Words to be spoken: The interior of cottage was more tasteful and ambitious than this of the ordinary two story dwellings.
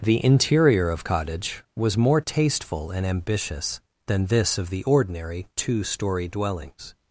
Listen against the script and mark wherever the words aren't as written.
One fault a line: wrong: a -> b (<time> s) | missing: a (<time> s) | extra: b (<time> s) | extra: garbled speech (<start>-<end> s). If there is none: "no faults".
no faults